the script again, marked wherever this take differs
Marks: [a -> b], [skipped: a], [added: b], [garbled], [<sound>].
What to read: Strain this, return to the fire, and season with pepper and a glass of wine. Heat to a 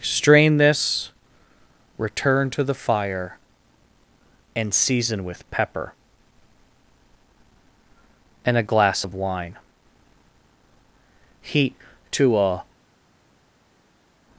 Strain this, return to the fire, and season with pepper and a glass of wine. Heat to a